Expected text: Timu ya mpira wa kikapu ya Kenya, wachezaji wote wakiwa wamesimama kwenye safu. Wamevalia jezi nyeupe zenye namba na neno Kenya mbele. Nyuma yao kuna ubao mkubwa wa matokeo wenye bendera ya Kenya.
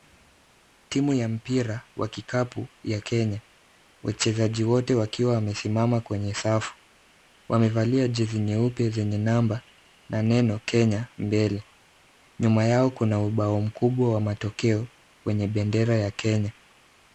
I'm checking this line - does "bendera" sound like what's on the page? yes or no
yes